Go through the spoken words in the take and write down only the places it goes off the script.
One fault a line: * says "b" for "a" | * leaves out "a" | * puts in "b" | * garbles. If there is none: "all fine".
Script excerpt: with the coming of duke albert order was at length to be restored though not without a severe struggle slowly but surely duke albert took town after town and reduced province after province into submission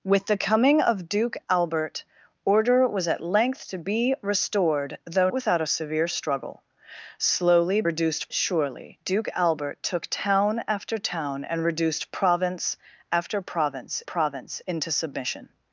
* leaves out "not"
* says "reduced" for "but"
* puts in "province"